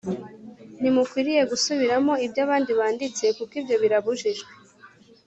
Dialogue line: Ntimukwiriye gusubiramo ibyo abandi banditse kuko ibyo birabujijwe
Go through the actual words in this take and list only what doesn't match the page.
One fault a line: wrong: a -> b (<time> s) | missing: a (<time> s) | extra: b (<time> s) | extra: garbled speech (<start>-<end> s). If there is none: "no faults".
no faults